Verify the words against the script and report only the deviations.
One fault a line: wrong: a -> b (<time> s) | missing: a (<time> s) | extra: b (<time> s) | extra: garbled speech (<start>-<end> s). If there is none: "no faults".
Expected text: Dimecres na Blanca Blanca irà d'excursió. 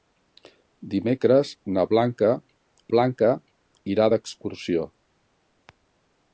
no faults